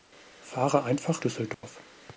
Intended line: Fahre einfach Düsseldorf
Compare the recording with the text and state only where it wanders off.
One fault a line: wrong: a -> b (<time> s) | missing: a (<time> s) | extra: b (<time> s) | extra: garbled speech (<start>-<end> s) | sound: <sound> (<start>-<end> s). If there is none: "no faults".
sound: dropout (1.5-1.6 s)